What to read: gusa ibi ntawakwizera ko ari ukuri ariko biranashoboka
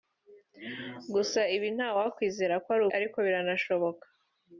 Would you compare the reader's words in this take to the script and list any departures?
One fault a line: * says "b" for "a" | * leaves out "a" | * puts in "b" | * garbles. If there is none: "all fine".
* leaves out "ukuri"